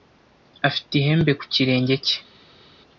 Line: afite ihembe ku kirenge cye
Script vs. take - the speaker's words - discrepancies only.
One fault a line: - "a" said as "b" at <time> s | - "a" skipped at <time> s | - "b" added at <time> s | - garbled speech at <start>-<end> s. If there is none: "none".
none